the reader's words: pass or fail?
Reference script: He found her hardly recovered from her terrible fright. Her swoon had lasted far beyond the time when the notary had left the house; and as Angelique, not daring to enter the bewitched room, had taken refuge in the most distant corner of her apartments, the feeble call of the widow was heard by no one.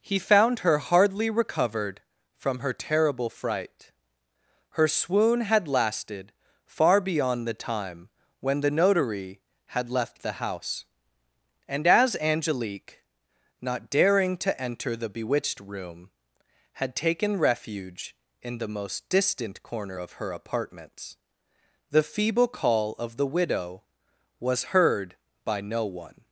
pass